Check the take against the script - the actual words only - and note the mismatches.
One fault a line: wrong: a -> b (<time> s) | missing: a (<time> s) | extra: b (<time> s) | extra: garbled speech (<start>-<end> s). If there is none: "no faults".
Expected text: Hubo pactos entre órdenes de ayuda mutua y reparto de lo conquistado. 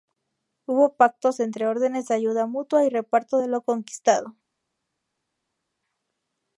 no faults